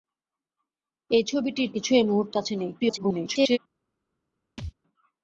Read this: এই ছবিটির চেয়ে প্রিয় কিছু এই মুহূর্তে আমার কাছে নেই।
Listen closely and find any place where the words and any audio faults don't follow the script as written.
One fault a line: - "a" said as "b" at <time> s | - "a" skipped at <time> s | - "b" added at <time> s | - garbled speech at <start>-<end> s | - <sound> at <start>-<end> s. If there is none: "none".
- "চেয়ে প্রিয়" skipped at 1.7 s
- "আমার" skipped at 2.3 s
- garbled speech at 2.8-3.6 s
- thud at 4.6-4.7 s